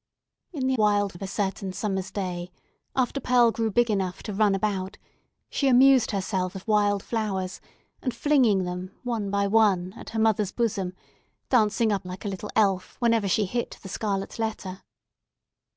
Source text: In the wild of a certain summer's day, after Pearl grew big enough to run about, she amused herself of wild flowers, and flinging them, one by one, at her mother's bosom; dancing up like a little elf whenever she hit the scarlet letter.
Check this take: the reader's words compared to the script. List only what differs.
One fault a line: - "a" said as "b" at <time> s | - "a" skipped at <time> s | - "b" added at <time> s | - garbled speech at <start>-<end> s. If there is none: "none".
none